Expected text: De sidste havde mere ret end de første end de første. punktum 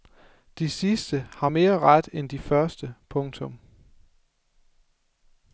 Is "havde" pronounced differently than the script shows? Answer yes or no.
yes